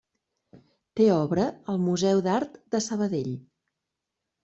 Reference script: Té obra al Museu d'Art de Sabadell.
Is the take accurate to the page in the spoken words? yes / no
yes